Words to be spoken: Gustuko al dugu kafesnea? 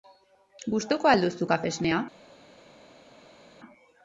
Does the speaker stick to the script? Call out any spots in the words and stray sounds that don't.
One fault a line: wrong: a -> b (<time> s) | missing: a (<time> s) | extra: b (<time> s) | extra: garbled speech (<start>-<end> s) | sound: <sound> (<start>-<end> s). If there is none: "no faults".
wrong: dugu -> duzu (1.3 s)